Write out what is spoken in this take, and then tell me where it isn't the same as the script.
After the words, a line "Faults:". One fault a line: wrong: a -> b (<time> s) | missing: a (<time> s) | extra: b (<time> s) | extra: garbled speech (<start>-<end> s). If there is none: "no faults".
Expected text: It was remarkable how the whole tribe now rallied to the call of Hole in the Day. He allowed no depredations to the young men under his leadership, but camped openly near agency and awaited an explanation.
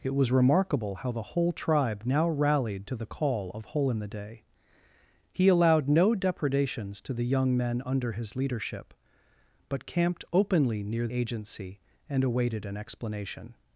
It was remarkable how the whole tribe now rallied to the call of Hole in the Day. He allowed no depredations to the young men under his leadership, but camped openly near agency and awaited an explanation.
Faults:
no faults